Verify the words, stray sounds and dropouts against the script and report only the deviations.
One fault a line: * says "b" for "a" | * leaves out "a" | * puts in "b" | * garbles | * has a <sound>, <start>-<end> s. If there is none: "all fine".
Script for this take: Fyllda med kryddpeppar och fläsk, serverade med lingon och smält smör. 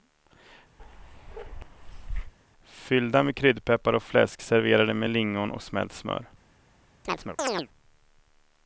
* has a bark, 0.8-2.3 s
* has a chirp, 7.0-7.7 s